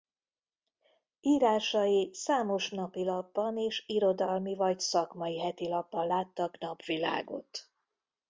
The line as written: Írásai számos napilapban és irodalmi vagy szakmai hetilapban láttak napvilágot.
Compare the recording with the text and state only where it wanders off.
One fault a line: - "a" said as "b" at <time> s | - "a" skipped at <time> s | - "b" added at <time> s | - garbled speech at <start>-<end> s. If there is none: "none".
none